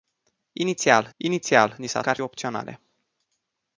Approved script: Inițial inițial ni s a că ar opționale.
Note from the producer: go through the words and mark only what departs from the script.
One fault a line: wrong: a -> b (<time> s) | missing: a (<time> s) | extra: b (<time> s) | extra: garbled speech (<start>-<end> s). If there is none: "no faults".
no faults